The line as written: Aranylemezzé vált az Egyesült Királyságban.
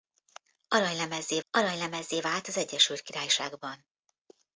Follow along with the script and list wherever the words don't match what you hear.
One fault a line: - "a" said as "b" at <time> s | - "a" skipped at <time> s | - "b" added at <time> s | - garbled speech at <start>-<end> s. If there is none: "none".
- "aranylemezzé" added at 1.5 s